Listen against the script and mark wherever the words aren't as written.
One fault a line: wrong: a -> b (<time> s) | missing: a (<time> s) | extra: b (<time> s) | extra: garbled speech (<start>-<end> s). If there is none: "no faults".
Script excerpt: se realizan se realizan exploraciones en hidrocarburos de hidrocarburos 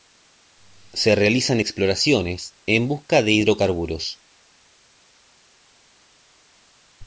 missing: se realizan (1.6 s)
wrong: hidrocarburos -> busca (2.9 s)